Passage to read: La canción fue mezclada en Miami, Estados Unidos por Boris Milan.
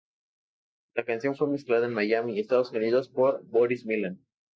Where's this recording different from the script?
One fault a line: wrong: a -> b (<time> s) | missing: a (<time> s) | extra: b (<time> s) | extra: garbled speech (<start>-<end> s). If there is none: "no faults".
no faults